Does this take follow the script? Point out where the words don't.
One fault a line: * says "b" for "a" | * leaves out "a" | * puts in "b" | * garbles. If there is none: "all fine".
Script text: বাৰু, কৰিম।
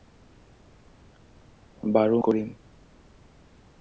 all fine